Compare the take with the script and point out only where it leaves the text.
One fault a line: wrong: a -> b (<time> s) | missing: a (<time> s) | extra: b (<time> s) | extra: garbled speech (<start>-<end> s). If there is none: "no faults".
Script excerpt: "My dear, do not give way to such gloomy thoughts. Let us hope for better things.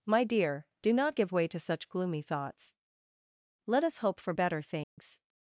no faults